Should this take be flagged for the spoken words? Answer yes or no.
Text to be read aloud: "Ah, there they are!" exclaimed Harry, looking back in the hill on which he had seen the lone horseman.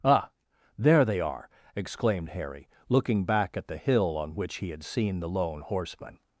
yes